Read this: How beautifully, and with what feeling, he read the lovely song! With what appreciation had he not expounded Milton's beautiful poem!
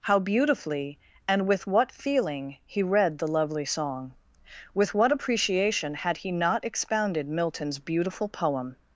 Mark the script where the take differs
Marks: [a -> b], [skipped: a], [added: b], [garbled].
How beautifully, and with what feeling, he read the lovely song! With what appreciation had he not expounded Milton's beautiful poem!